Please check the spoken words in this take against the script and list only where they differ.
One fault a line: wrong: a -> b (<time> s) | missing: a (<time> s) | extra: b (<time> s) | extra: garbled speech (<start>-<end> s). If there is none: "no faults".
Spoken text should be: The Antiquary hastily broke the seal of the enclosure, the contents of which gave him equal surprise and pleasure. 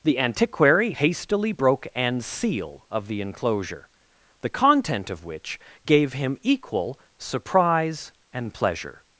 wrong: the -> an (1.9 s)
wrong: contents -> content (4.5 s)